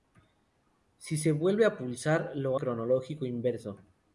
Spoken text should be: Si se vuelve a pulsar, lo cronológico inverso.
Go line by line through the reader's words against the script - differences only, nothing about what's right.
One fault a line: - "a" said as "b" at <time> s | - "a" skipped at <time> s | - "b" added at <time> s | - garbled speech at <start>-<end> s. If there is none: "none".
none